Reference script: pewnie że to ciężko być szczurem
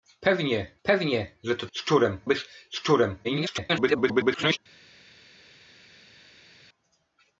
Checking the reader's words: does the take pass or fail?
fail